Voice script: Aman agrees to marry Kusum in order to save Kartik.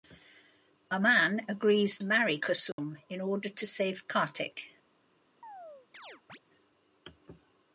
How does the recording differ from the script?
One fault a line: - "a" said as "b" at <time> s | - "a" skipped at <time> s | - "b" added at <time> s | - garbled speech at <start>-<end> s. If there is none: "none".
- "to" skipped at 2.0 s